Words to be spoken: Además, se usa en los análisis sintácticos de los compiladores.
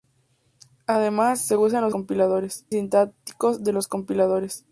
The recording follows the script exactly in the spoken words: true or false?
false